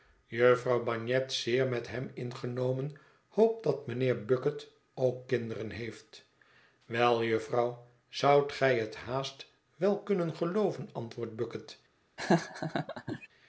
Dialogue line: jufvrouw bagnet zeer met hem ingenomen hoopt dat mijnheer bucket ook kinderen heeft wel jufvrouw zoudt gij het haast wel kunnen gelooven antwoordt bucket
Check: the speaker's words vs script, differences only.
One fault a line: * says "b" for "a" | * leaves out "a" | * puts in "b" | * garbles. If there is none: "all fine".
all fine